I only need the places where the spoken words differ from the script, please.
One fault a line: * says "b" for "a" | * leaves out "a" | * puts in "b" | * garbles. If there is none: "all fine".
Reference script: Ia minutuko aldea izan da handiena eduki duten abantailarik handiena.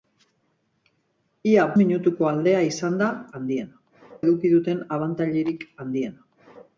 all fine